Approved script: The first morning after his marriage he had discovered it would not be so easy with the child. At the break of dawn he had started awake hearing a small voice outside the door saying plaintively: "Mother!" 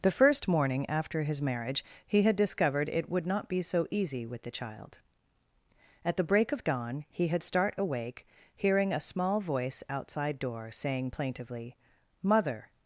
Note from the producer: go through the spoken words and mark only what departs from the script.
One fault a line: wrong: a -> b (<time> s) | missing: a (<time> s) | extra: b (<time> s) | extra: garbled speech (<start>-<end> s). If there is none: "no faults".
wrong: started -> start (7.4 s)
missing: the (10.4 s)